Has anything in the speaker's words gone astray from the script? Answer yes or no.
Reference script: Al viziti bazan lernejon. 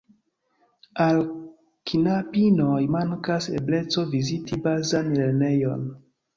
yes